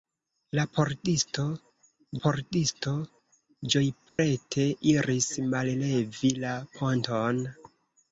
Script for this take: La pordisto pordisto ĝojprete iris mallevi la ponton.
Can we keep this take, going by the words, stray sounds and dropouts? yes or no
no